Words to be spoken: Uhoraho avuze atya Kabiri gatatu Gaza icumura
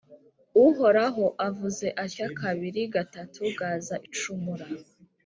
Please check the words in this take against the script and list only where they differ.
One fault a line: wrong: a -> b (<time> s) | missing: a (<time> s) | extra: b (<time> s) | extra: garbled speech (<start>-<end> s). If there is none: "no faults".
no faults